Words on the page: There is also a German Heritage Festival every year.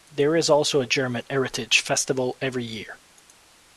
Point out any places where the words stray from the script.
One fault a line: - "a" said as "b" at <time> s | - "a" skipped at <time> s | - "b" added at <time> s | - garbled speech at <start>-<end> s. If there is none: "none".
none